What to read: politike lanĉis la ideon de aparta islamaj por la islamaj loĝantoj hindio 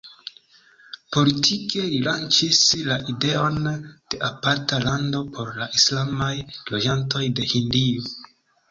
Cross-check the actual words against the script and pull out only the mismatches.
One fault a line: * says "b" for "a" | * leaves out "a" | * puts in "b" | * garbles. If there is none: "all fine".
* puts in "li"
* says "lando" for "islamaj"
* puts in "de"